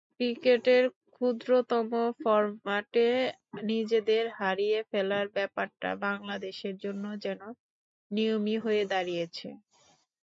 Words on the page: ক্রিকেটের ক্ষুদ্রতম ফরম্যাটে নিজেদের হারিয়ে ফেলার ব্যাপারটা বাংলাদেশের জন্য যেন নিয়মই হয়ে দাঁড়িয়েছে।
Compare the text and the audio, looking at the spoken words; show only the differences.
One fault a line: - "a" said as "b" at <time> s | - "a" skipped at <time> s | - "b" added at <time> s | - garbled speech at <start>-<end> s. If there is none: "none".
none